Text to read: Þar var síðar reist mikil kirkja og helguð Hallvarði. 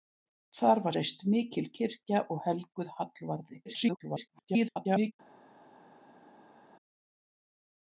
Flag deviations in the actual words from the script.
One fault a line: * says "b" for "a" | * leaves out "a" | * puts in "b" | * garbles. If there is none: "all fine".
* leaves out "síðar"
* garbles